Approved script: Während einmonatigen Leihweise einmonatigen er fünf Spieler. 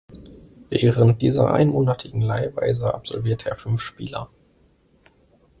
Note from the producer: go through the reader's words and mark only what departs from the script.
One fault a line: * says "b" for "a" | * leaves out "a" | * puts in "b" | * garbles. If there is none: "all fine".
* puts in "dieser"
* says "absolvierte" for "einmonatigen"